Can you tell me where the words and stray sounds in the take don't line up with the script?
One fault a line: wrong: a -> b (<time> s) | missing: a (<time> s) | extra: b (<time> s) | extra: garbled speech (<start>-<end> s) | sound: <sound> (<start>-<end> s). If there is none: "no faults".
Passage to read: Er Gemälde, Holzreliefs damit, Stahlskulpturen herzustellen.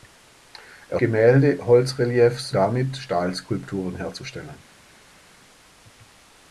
no faults